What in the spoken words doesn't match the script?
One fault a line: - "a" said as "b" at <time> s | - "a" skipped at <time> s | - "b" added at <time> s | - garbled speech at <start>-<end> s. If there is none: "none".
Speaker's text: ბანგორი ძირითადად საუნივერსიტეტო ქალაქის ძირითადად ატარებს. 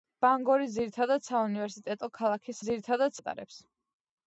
none